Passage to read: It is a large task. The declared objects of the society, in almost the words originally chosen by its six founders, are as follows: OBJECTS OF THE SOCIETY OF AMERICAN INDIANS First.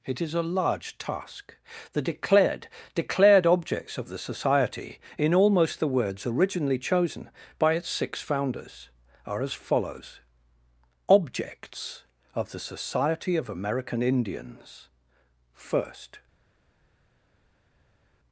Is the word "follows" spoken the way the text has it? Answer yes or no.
yes